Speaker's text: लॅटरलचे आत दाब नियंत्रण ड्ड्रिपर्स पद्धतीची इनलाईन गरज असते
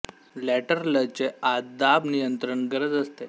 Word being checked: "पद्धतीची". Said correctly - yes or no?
no